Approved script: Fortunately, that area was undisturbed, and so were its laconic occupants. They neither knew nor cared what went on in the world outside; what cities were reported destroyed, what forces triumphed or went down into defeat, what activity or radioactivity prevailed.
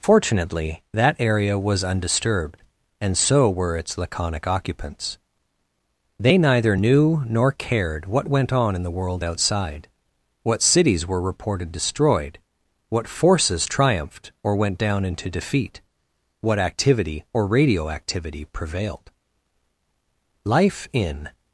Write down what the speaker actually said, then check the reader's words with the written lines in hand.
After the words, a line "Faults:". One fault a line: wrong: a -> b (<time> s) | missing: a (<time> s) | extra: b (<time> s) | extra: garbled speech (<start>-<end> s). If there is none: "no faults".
Fortunately, that area was undisturbed, and so were its laconic occupants. They neither knew nor cared what went on in the world outside; what cities were reported destroyed, what forces triumphed or went down into defeat, what activity or radioactivity prevailed. Life in
Faults:
extra: Life in (20.4 s)